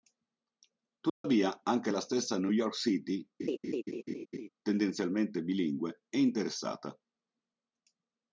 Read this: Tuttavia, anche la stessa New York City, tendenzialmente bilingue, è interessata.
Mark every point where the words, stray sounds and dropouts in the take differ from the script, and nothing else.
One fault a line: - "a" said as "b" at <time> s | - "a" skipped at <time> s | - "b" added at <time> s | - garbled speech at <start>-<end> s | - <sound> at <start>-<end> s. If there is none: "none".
- dropout at 1.1-1.2 s
- laugh at 3.4-4.5 s